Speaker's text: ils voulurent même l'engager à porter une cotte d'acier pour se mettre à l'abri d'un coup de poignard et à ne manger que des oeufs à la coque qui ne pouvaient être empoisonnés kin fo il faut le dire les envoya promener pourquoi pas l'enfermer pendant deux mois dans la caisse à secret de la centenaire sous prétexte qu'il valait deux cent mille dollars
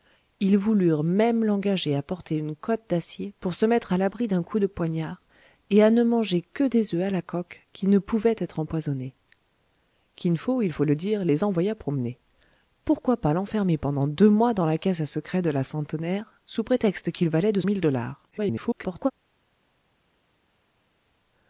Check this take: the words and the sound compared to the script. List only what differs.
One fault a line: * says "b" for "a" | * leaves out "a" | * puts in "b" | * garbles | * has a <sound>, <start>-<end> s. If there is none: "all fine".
* leaves out "cent"
* garbles